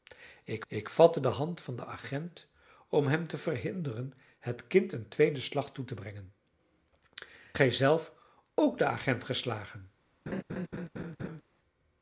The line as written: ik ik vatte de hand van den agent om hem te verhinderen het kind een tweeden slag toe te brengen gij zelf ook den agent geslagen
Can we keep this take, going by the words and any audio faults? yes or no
no